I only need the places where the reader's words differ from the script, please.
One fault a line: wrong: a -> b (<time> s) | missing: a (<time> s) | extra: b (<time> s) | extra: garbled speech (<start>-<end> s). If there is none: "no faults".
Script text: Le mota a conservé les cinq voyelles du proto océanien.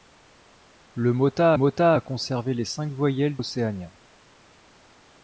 extra: mota (1.5 s)
missing: du proto (3.4 s)